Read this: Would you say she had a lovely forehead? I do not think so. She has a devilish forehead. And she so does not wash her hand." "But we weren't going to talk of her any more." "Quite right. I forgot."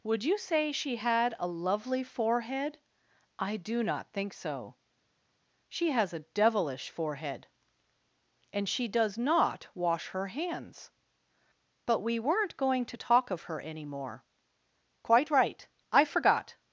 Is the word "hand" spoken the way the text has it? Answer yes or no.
no